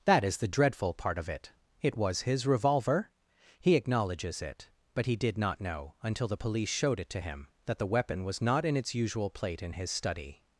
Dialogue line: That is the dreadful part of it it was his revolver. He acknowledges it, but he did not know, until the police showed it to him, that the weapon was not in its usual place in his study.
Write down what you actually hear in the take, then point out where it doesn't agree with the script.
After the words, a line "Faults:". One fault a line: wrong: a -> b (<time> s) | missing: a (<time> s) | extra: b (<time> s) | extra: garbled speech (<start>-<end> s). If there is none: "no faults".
That is the dreadful part of it it was his revolver. He acknowledges it, but he did not know, until the police showed it to him, that the weapon was not in its usual plate in his study.
Faults:
wrong: place -> plate (9.3 s)